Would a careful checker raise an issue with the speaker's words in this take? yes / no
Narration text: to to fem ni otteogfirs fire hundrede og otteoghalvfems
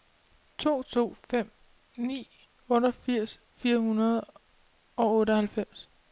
no